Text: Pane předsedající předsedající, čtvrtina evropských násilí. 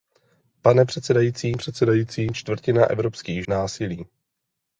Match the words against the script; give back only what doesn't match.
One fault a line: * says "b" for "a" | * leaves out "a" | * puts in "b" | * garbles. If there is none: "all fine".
all fine